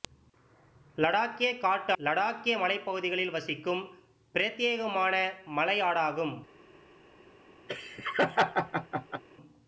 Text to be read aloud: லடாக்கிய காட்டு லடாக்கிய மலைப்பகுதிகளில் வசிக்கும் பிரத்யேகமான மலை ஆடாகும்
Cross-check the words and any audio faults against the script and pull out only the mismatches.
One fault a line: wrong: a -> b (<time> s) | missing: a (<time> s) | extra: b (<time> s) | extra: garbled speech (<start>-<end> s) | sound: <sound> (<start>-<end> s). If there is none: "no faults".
sound: laugh (7.7-9.2 s)